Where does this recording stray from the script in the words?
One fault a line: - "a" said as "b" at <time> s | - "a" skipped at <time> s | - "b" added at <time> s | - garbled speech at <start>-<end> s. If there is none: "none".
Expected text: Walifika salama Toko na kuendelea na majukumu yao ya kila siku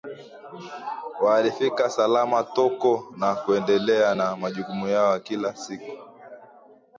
none